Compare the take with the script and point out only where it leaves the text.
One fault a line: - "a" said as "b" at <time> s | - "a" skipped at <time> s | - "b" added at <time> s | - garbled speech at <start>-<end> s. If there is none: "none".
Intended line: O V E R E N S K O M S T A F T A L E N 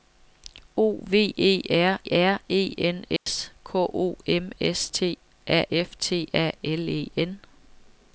- "R" added at 2.1 s